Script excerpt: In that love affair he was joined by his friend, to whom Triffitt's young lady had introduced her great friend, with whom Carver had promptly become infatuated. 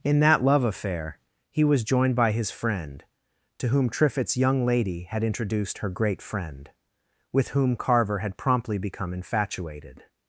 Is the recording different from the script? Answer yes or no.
no